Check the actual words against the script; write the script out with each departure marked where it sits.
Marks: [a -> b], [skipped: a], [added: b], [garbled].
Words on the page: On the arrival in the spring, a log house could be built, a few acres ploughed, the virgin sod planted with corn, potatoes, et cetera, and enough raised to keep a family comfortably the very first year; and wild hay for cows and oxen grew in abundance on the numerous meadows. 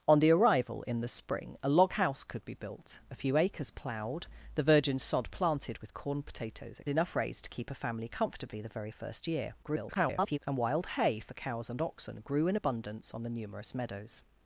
On the arrival in the spring, a log house could be built, a few acres ploughed, the virgin sod planted with corn, potatoes, et [skipped: cetera, and] enough raised to keep a family comfortably the very first year; [garbled] and wild hay for cows and oxen grew in abundance on the numerous meadows.